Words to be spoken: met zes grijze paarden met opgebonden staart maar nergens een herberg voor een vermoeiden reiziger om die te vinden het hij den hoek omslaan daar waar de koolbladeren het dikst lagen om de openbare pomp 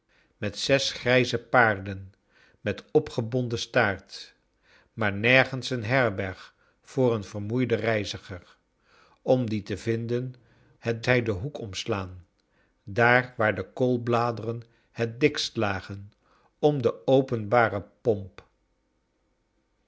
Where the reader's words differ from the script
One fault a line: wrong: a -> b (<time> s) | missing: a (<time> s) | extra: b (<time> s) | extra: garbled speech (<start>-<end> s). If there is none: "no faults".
no faults